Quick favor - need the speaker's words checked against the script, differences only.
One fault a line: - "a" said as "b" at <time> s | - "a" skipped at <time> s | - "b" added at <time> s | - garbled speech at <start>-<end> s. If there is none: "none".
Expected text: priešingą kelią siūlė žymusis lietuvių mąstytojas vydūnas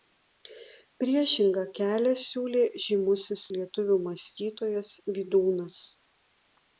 none